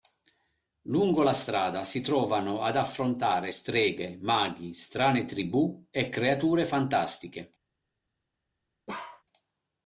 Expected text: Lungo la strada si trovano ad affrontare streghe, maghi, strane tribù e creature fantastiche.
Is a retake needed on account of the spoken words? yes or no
no